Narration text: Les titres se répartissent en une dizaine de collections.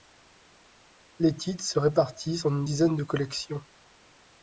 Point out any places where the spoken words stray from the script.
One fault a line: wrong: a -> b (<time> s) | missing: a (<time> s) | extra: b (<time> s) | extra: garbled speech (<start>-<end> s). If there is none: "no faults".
no faults